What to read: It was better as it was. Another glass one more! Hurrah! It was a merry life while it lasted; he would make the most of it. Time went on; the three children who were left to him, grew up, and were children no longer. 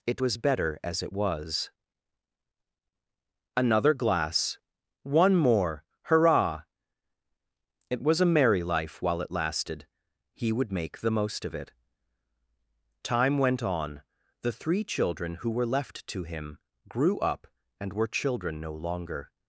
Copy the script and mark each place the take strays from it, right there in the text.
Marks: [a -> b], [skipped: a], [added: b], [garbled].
It was better as it was. Another glass one more! Hurrah! It was a merry life while it lasted; he would make the most of it. Time went on; the three children who were left to him, grew up, and were children no longer.